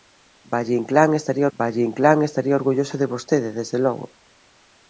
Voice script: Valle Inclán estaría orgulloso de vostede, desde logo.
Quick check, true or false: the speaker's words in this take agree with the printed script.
false